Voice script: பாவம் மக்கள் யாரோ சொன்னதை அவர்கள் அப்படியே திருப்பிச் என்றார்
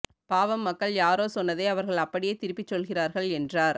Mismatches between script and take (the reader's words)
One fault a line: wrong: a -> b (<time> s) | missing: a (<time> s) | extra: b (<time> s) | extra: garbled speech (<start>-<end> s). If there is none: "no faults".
extra: சொல்கிறார்கள் (2.7 s)